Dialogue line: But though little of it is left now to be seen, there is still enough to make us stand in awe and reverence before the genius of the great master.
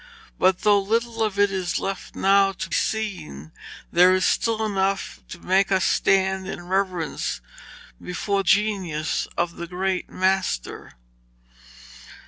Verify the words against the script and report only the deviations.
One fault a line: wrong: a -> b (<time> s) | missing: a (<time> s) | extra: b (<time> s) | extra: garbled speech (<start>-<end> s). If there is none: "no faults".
missing: be (2.7 s)
missing: awe (6.6 s)
missing: the (8.4 s)